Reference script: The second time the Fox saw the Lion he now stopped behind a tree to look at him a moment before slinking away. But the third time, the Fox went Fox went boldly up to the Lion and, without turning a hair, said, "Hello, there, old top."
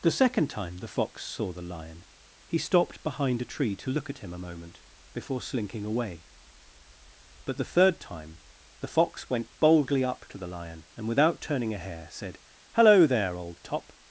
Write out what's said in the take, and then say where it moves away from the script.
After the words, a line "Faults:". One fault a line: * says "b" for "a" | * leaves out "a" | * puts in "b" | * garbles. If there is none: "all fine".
The second time the Fox saw the Lion he stopped behind a tree to look at him a moment before slinking away. But the third time, the Fox went boldly up to the Lion and, without turning a hair, said, "Hello, there, old top."
Faults:
* leaves out "now"
* leaves out "Fox went"